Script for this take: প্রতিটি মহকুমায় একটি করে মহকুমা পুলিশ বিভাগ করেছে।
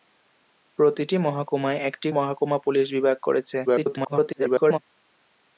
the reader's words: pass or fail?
fail